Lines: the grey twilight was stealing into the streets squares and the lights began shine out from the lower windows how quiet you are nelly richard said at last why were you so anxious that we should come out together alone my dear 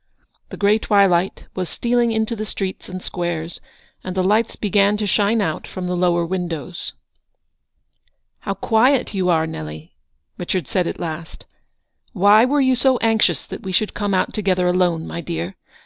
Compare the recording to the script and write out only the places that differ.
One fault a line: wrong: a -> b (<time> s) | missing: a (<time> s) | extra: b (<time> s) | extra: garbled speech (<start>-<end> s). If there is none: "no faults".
extra: and (2.9 s)
extra: to (5.0 s)